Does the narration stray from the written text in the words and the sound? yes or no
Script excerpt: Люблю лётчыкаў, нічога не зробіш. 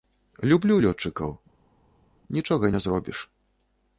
no